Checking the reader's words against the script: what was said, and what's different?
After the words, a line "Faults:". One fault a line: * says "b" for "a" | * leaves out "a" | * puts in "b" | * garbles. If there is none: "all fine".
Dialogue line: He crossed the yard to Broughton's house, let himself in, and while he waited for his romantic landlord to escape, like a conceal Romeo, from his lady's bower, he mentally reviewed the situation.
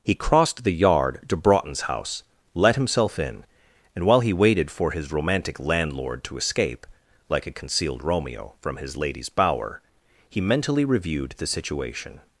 He crossed the yard to Broughton's house, let himself in, and while he waited for his romantic landlord to escape, like a concealed Romeo, from his lady's bower, he mentally reviewed the situation.
Faults:
* says "concealed" for "conceal"